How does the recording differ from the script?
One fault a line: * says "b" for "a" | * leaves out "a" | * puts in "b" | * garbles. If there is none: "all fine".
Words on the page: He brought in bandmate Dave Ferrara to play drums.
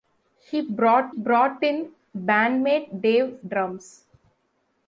* puts in "brought"
* leaves out "Ferrara to play"